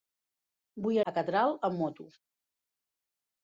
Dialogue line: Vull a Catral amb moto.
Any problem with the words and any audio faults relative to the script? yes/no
no